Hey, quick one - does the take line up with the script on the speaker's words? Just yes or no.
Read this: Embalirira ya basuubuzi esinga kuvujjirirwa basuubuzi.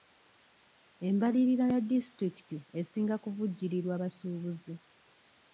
no